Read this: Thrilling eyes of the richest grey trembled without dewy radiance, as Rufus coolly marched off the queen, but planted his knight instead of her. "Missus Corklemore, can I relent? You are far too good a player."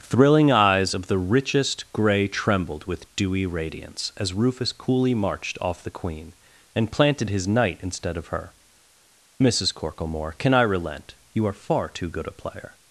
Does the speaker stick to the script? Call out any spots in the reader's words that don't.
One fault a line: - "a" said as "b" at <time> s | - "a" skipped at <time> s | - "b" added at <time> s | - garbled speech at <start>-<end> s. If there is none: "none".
- "without" said as "with" at 2.9 s
- "but" said as "and" at 6.7 s